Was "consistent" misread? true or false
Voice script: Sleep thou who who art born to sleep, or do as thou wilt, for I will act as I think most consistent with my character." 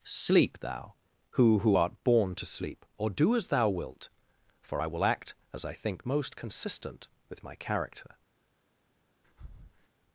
false